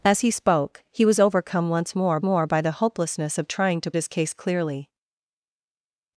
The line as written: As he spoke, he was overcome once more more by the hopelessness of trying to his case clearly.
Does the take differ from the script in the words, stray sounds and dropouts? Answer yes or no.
no